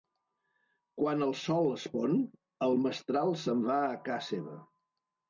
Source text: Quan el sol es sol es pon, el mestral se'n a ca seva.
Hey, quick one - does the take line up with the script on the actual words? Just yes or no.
no